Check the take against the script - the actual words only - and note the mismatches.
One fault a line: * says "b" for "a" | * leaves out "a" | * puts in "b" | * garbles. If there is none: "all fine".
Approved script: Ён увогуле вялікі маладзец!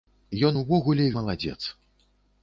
* leaves out "вялікі"